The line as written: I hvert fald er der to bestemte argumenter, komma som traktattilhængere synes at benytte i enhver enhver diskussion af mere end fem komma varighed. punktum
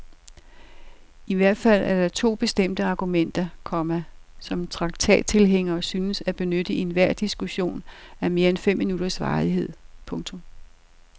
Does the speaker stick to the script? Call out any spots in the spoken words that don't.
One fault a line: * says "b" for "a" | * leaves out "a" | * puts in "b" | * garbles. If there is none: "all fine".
* leaves out "enhver"
* says "minutters" for "komma"